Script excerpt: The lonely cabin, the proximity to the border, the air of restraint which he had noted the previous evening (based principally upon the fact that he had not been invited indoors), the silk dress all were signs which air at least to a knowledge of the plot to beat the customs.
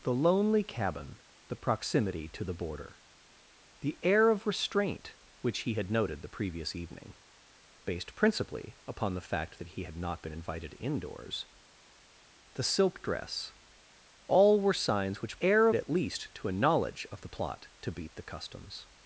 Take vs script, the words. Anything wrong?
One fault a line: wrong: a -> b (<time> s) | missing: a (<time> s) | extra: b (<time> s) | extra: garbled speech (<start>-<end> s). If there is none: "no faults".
no faults